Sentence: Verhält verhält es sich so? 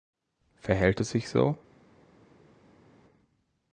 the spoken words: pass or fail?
fail